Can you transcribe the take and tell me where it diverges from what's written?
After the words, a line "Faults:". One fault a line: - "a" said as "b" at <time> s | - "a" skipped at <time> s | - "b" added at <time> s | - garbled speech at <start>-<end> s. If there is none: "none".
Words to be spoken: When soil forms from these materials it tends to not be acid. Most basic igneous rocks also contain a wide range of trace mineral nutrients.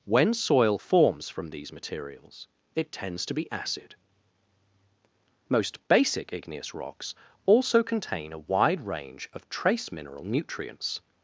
When soil forms from these materials it tends to be acid. Most basic igneous rocks also contain a wide range of trace mineral nutrients.
Faults:
- "not" skipped at 3.3 s